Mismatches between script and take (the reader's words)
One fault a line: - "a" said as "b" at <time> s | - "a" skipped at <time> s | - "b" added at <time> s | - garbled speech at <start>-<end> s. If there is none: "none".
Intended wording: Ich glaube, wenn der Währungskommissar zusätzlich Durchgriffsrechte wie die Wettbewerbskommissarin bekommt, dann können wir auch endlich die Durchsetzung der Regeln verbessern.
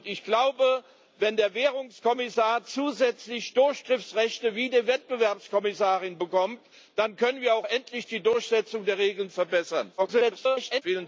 - garbled speech at 10.0-10.8 s